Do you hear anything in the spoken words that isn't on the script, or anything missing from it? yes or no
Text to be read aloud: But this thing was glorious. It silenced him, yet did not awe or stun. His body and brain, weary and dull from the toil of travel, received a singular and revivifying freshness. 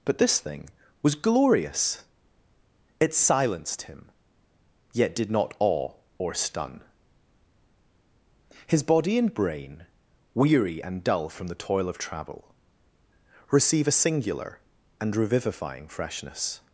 yes